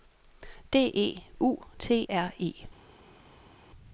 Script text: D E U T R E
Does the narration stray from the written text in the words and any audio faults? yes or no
no